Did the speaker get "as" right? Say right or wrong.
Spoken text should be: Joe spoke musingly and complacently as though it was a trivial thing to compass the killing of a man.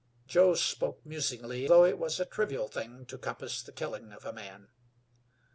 wrong